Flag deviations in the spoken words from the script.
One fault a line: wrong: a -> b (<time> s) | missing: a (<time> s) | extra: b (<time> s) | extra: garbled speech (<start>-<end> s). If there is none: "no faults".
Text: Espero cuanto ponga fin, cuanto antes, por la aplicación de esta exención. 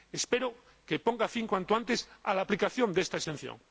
wrong: cuanto -> que (0.8 s)
wrong: por -> a (2.2 s)